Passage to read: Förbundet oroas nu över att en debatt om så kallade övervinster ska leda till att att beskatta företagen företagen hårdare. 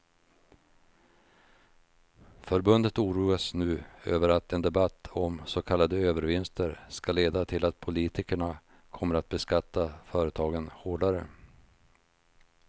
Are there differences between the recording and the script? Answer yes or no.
yes